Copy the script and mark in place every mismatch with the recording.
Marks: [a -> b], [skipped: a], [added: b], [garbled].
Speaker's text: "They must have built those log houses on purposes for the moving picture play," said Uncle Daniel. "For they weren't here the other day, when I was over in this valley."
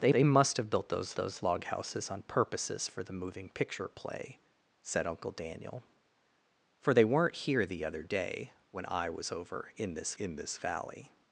"They [added: they] must have built those [added: those] log houses on purposes for the moving picture play," said Uncle Daniel. "For they weren't here the other day, when I was over in this [added: in this] valley."